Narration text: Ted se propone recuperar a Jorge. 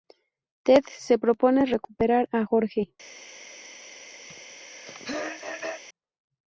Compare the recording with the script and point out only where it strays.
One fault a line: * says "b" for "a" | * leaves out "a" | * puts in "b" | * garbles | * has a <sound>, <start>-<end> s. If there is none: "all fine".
* has a throat clearing, 4.3-5.8 s